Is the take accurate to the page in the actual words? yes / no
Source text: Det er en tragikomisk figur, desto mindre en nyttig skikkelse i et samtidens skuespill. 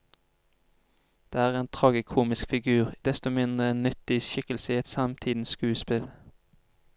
yes